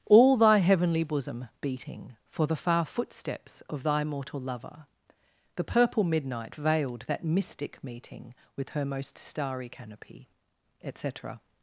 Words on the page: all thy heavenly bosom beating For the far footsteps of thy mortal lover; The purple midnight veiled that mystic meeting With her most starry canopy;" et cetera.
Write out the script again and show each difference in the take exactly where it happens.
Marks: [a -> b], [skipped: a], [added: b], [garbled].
all thy heavenly bosom beating For the far footsteps of thy mortal lover; The purple midnight veiled that mystic meeting With her most starry canopy;" et cetera.